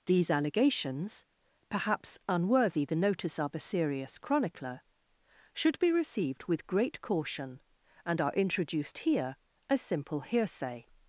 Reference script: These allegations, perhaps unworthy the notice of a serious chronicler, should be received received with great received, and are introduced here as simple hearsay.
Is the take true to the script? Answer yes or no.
no